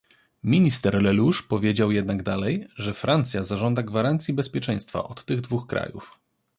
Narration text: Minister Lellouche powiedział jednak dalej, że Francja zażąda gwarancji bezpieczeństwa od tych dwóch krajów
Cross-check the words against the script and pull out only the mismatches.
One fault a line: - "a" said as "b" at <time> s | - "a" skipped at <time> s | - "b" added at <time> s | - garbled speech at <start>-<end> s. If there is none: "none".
none